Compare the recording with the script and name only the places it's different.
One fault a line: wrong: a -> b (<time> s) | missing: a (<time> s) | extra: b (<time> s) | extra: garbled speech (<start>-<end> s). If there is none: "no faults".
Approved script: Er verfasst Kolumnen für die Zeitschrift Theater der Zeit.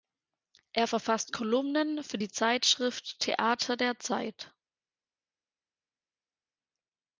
no faults